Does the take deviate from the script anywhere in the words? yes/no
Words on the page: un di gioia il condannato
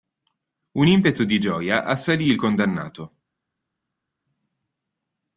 yes